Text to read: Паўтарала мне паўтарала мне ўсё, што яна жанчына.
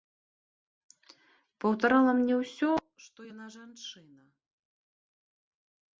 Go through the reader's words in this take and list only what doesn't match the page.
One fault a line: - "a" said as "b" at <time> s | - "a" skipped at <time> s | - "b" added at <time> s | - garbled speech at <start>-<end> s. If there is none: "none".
- "паўтарала мне" skipped at 2.4 s